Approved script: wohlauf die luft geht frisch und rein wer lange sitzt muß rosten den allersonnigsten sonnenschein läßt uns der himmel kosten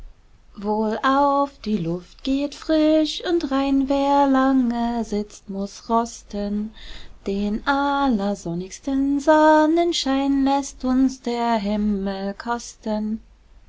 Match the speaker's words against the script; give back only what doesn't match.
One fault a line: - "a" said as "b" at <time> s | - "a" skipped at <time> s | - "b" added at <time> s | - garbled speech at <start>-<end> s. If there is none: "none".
none